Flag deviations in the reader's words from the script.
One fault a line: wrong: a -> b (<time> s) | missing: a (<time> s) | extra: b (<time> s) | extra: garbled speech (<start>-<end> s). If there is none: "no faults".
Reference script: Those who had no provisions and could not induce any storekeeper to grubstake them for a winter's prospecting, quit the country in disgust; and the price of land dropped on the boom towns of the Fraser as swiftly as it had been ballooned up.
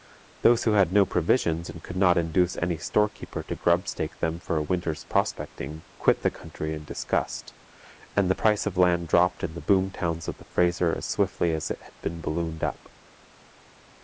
wrong: on -> in (9.4 s)